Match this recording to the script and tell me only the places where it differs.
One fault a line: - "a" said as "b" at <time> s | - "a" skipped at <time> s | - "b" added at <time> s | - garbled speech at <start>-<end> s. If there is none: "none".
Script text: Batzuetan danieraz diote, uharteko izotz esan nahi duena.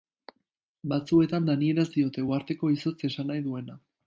none